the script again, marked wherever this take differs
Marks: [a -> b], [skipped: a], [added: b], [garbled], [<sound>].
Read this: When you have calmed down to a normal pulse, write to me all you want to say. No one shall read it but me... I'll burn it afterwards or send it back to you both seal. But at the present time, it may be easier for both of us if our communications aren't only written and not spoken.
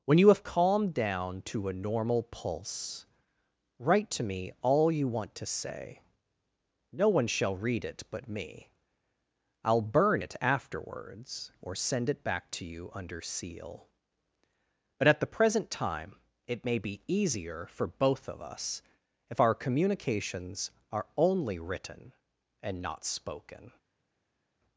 When you have calmed down to a normal pulse, write to me all you want to say. No one shall read it but me... I'll burn it afterwards or send it back to you [both -> under] seal. But at the present time, it may be easier for both of us if our communications [aren't -> are] only written and not spoken.